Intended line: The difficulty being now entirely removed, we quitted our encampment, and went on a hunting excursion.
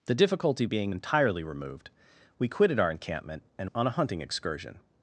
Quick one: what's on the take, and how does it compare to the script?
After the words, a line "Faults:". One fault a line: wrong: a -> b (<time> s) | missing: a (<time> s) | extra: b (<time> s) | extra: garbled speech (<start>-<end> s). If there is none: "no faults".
The difficulty being entirely removed, we quitted our encampment, and on a hunting excursion.
Faults:
missing: now (0.9 s)
missing: went (3.7 s)